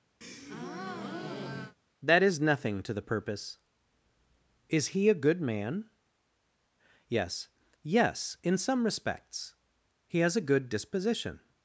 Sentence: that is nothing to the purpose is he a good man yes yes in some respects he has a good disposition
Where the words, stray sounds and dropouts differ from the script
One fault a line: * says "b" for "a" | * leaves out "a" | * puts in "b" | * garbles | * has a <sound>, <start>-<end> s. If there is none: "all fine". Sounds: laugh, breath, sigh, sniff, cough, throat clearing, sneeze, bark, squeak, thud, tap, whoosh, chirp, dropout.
* has a breath, 0.2-1.8 s